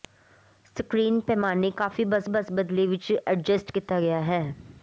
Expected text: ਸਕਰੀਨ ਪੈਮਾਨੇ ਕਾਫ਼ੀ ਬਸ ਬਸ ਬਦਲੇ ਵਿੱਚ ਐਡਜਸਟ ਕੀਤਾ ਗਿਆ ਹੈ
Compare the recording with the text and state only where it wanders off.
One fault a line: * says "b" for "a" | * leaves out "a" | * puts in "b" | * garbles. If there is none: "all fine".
all fine